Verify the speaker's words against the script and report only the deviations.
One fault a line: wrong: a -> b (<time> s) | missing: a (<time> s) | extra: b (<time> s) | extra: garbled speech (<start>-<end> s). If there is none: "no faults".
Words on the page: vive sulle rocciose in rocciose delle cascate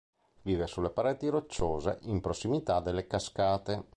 extra: pareti (0.9 s)
wrong: rocciose -> prossimità (2.2 s)